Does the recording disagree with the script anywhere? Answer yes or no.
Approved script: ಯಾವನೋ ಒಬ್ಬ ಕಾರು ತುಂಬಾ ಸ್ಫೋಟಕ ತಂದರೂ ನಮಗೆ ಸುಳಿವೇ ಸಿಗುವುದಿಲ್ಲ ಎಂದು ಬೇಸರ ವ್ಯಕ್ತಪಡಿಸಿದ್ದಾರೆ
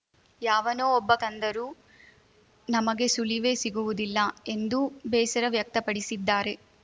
yes